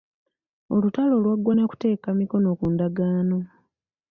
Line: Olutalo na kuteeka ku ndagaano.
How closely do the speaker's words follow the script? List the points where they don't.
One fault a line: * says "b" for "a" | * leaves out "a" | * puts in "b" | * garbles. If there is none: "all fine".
* puts in "lwaggwa"
* puts in "mikono"